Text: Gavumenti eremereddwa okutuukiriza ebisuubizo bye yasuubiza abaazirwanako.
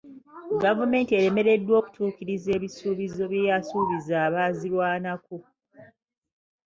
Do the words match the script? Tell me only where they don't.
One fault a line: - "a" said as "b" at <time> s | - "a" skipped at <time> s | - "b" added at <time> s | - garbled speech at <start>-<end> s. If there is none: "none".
none